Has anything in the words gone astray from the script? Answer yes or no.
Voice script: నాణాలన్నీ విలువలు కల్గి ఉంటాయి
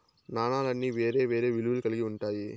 yes